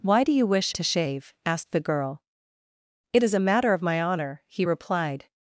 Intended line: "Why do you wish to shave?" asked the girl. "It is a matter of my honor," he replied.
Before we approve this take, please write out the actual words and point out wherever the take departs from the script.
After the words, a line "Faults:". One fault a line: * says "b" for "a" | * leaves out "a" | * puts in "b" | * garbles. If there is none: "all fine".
"Why do you wish to shave?" asked the girl. "It is a matter of my honor," he replied.
Faults:
all fine